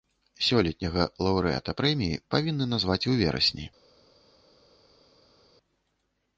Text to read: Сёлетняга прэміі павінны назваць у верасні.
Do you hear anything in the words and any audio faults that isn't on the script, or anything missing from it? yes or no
yes